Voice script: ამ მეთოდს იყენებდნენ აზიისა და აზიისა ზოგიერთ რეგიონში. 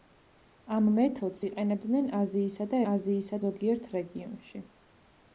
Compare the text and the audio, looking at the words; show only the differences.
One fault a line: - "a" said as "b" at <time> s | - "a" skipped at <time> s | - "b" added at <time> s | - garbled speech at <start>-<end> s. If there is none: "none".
none